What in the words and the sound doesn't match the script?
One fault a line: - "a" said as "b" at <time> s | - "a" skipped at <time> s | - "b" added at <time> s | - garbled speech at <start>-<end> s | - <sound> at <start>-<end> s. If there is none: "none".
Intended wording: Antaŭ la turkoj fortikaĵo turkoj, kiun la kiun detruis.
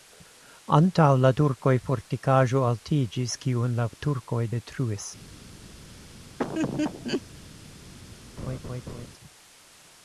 - "turkoj" said as "altiĝis" at 2.7 s
- "kiun" said as "turkoj" at 4.1 s
- laugh at 6.4-7.2 s
- laugh at 8.4-9.1 s